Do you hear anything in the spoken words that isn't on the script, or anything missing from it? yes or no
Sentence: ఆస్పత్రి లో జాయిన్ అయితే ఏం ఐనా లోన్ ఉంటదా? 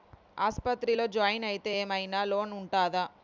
no